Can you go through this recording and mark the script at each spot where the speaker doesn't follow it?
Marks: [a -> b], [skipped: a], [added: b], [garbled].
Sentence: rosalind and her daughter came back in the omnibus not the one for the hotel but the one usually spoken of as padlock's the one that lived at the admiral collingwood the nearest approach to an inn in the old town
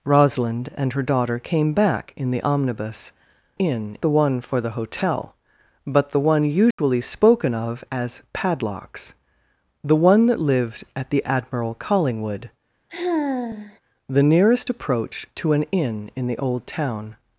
rosalind and her daughter came back in the omnibus [not -> inn] the one for the hotel but the one usually spoken of as padlock's the one that lived at the admiral collingwood the nearest approach to an inn in the old town